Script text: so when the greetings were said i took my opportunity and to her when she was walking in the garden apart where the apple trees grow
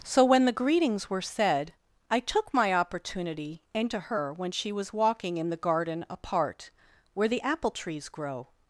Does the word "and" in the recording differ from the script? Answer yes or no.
no